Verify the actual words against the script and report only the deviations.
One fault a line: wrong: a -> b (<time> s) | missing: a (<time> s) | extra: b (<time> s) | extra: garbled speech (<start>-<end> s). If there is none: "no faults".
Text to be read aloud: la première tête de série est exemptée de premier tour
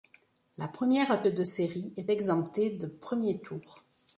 missing: tête (1.2 s)